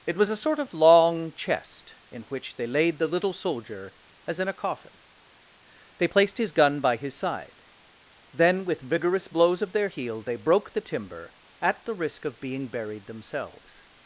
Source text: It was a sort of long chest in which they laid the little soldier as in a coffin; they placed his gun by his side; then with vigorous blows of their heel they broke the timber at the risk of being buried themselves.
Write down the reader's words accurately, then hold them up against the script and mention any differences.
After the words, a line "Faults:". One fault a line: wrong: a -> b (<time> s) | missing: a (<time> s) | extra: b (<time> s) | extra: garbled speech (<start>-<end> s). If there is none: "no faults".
It was a sort of long chest in which they laid the little soldier as in a coffin; they placed his gun by his side; then with vigorous blows of their heel they broke the timber at the risk of being buried themselves.
Faults:
no faults